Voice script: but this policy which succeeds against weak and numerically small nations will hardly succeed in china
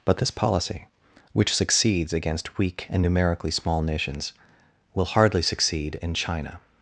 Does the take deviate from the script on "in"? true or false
false